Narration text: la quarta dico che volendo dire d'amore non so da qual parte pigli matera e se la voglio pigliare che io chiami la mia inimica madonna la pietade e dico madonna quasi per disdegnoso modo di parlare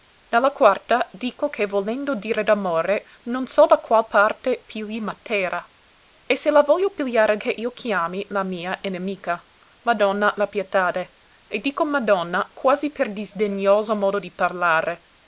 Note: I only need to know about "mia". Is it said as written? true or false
true